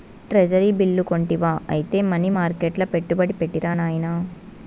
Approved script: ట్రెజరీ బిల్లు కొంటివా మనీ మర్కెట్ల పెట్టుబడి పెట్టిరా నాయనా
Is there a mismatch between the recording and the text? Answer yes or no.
yes